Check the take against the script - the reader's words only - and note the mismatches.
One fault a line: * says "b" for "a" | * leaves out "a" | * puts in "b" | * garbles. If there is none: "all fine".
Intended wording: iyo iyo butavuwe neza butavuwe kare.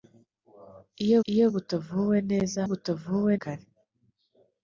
all fine